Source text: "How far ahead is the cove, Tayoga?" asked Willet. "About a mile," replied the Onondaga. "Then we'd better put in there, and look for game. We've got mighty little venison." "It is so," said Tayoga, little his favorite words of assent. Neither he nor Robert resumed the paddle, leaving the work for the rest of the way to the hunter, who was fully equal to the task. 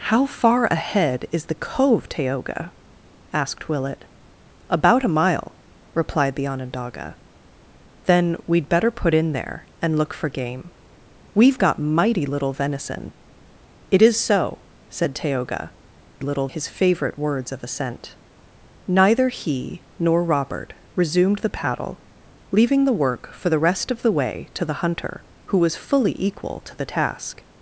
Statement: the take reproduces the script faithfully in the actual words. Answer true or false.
true